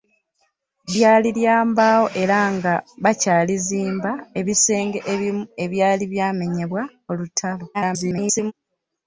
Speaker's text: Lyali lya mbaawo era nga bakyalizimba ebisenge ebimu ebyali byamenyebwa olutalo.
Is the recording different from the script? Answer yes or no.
yes